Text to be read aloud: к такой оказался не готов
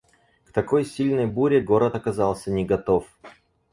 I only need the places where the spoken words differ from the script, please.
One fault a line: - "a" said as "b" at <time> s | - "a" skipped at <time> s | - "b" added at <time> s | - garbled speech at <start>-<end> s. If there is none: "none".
- "сильной буре город" added at 0.8 s